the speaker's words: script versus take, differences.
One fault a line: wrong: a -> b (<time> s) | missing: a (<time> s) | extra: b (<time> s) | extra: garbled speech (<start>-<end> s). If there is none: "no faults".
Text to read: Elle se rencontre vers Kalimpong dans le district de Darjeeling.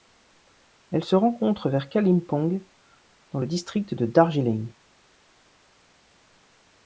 no faults